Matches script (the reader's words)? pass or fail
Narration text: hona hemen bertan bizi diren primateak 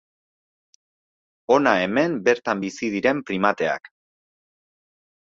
pass